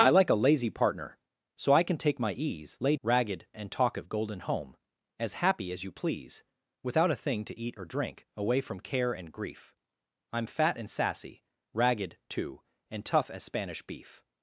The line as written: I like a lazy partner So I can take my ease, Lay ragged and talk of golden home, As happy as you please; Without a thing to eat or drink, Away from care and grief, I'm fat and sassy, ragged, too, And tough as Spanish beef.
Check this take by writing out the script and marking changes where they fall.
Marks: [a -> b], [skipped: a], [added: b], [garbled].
I like a lazy partner So I can take my ease, Lay ragged and talk of golden home, As happy as you please; Without a thing to eat or drink, Away from care and grief, I'm fat and sassy, ragged, too, And tough as Spanish beef.